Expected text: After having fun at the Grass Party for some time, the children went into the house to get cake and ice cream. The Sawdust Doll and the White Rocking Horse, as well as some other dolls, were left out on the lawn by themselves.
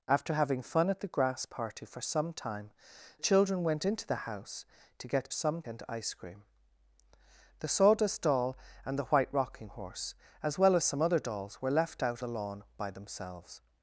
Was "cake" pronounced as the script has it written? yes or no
no